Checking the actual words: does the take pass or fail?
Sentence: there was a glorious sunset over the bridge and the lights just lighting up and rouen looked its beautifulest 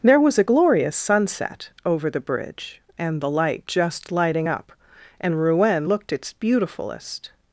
fail